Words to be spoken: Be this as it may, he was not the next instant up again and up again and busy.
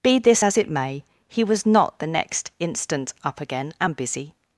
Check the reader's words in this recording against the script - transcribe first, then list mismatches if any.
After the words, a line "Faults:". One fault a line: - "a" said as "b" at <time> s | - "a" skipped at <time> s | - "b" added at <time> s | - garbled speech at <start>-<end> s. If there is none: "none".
Be this as it may, he was not the next instant up again and busy.
Faults:
- "up again and" skipped at 4.0 s